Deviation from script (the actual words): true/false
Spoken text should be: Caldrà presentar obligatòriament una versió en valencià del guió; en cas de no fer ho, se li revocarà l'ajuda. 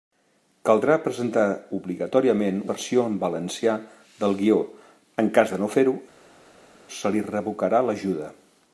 true